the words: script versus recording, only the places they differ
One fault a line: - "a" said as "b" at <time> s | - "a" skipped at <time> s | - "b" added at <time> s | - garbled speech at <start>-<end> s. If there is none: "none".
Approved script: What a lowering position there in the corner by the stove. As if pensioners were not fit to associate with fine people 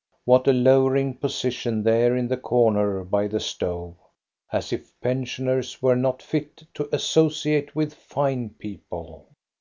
none